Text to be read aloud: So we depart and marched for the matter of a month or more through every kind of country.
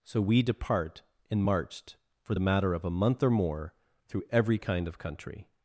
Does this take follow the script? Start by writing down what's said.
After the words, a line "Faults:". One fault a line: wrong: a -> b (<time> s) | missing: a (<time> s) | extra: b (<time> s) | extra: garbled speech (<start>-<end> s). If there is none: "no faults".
So we depart and marched for the matter of a month or more through every kind of country.
Faults:
no faults